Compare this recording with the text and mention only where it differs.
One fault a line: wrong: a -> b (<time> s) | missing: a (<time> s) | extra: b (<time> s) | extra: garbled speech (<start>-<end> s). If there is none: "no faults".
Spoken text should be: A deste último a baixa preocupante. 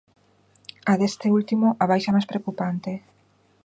extra: máis (2.1 s)